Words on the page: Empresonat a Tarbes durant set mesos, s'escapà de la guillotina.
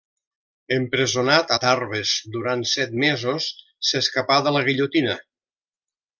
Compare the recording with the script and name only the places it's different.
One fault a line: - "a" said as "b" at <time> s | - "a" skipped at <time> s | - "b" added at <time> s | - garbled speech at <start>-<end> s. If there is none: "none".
none